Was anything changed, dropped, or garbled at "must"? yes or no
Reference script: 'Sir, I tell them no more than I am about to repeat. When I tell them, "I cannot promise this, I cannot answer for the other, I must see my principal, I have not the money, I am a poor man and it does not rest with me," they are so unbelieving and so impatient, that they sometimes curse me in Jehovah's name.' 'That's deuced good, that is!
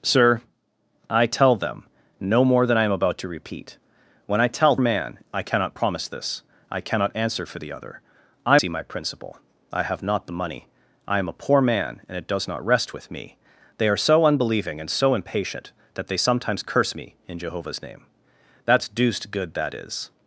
yes